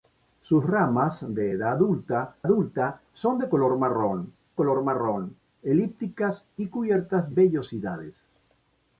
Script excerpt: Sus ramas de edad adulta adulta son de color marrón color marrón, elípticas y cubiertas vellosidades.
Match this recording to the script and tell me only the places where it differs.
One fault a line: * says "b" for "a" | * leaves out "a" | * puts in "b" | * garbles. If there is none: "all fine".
all fine